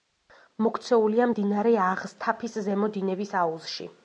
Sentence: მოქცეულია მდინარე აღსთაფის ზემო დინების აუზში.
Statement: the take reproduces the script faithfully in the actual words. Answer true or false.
true